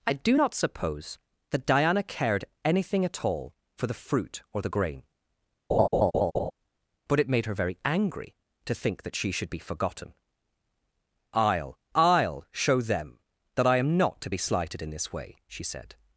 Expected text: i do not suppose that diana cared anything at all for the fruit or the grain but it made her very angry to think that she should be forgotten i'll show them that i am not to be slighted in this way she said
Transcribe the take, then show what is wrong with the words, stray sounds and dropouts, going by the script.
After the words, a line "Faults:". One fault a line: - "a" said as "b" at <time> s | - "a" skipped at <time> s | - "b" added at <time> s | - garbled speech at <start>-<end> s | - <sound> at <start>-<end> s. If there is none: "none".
i do not suppose that diana cared anything at all for the fruit or the grain but it made her very angry to think that she should be forgotten i'll i'll show them that i am not to be slighted in this way she said
Faults:
- laugh at 5.7-6.5 s
- "i'll" added at 11.9 s